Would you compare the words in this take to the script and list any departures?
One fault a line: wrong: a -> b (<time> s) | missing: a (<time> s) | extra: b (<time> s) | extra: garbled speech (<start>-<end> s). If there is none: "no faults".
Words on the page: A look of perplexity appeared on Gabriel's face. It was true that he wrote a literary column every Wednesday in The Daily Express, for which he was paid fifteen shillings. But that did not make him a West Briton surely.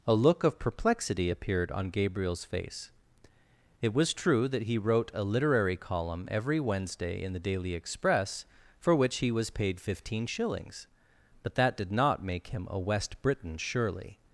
no faults